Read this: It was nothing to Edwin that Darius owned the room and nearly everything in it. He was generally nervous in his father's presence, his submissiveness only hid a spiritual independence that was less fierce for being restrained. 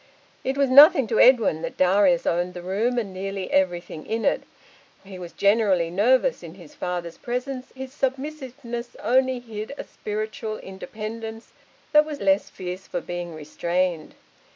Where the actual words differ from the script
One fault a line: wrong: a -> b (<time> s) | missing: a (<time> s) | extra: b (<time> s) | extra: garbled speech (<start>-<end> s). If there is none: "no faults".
no faults